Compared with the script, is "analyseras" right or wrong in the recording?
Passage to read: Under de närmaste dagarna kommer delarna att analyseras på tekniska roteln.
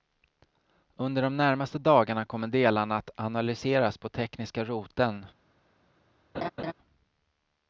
right